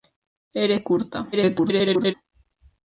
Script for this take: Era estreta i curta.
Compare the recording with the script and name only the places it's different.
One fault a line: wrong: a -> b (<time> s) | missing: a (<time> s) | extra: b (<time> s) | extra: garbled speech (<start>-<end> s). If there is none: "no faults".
missing: estreta (0.8 s)
extra: garbled speech (1.3-2.1 s)